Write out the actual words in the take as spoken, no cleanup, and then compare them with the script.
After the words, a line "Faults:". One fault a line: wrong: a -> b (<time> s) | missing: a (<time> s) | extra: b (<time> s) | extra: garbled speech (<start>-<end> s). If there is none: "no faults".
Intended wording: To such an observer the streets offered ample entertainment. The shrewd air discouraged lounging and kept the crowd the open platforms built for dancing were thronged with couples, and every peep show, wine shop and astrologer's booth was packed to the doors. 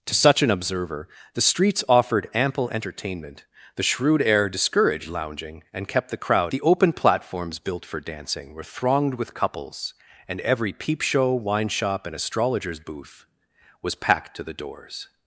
To such an observer the streets offered ample entertainment. The shrewd air discouraged lounging and kept the crowd the open platforms built for dancing were thronged with couples, and every peep show, wine shop and astrologer's booth was packed to the doors.
Faults:
no faults